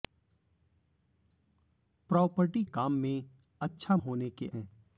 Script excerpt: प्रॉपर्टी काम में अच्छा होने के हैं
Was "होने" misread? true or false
false